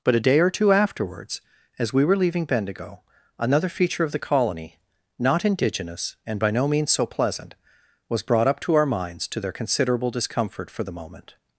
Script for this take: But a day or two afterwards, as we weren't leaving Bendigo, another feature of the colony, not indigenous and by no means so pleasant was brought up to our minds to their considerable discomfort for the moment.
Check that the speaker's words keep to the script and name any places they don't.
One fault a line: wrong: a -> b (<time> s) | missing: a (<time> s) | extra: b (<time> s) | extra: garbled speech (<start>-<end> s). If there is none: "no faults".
wrong: weren't -> were (2.1 s)